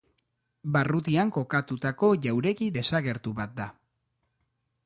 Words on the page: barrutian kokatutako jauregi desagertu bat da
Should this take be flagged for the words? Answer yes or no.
no